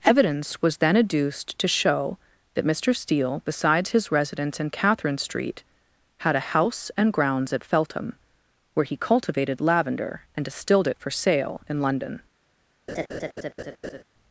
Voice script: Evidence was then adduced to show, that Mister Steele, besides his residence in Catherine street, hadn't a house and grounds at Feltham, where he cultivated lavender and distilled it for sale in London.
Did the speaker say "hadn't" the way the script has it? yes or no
no